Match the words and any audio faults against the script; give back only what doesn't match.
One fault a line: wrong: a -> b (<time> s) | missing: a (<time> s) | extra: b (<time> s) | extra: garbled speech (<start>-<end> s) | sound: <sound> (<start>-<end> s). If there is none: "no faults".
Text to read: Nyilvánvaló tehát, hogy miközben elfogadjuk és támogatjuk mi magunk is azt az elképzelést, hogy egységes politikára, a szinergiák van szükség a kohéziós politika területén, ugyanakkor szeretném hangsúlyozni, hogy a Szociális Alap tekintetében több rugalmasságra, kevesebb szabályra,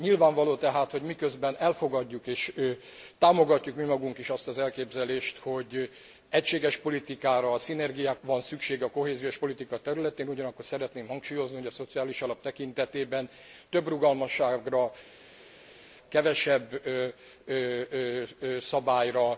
no faults